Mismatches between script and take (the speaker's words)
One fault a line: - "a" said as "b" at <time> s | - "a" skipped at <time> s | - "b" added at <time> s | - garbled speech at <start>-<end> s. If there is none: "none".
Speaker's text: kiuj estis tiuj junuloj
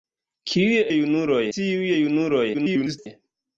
- "estis" said as "junuloj" at 0.9 s
- garbled speech at 2.5-3.1 s